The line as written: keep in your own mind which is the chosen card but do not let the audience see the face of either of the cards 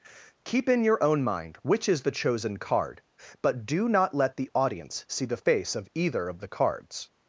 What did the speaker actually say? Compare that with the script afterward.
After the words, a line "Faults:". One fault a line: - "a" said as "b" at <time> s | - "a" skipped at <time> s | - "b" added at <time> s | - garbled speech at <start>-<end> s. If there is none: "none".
keep in your own mind which is the chosen card but do not let the audience see the face of either of the cards
Faults:
none